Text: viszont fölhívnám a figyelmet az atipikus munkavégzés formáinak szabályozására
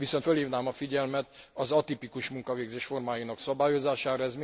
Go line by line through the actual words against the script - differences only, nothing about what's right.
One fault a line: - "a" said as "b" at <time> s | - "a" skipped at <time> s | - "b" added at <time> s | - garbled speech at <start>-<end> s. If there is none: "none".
none